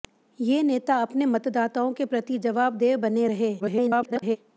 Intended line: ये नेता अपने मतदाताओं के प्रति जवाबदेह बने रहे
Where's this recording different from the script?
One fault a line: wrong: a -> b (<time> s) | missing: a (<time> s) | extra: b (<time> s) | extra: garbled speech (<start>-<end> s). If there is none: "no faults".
extra: garbled speech (3.6-4.4 s)